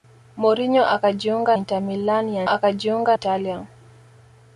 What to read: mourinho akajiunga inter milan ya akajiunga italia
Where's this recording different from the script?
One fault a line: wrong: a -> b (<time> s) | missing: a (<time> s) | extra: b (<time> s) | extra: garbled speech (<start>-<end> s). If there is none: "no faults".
no faults